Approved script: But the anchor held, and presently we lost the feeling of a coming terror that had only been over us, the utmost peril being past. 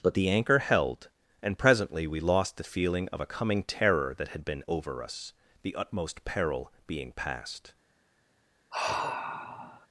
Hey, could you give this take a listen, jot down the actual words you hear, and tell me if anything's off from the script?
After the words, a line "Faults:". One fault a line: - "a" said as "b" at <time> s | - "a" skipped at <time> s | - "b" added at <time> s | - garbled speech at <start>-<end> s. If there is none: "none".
But the anchor held, and presently we lost the feeling of a coming terror that had been over us, the utmost peril being past.
Faults:
- "only" skipped at 4.5 s